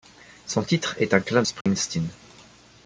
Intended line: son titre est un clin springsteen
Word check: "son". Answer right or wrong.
right